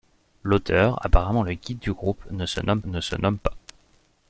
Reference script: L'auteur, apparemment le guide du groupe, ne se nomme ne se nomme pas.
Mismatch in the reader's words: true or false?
false